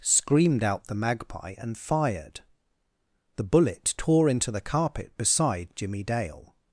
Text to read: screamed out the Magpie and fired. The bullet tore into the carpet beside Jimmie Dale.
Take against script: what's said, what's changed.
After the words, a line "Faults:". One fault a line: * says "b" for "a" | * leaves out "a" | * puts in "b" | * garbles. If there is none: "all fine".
screamed out the Magpie and fired. The bullet tore into the carpet beside Jimmie Dale.
Faults:
all fine